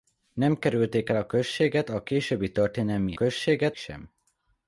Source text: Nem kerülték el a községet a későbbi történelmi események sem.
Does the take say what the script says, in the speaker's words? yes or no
no